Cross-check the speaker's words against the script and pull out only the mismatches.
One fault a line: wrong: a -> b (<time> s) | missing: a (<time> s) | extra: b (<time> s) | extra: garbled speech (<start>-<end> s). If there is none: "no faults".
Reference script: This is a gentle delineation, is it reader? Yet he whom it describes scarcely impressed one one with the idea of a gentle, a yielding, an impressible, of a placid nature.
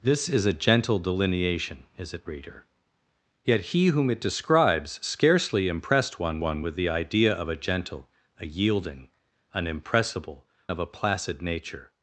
no faults